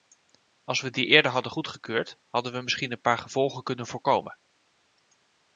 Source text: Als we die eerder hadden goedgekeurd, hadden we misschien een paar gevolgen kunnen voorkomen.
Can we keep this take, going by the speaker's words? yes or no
yes